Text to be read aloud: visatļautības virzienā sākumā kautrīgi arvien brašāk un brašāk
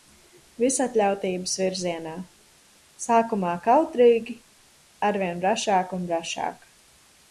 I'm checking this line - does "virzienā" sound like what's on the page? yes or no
yes